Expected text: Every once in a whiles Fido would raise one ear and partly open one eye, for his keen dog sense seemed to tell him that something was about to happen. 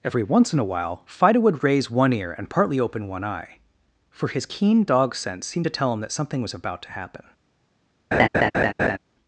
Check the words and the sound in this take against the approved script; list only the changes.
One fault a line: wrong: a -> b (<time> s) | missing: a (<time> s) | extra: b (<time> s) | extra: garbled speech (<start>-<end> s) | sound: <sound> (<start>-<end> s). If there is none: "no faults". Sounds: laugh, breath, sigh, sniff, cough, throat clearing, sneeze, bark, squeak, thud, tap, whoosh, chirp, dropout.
wrong: whiles -> while (0.7 s)
sound: laugh (8.1-9.0 s)